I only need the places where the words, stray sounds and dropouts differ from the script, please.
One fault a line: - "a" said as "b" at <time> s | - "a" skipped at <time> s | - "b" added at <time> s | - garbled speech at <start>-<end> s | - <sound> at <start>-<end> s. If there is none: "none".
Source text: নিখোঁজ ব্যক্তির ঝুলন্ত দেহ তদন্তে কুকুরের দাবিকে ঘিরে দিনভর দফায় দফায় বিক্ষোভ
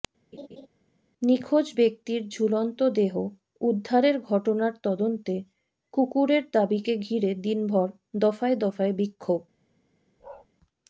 - laugh at 0.3-0.7 s
- "উদ্ধারের ঘটনার" added at 3.6 s
- bark at 10.2-10.5 s